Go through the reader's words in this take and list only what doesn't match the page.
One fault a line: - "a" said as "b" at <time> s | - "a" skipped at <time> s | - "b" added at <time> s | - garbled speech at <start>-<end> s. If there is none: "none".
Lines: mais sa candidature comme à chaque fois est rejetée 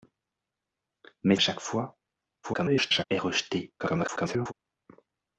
- "sa candidature comme" skipped at 1.4 s
- garbled speech at 2.4-3.0 s
- garbled speech at 3.8-4.5 s